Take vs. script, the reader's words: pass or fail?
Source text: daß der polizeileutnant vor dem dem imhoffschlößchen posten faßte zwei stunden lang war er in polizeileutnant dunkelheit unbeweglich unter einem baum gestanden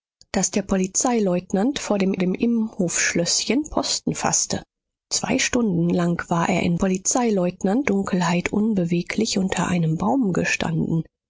pass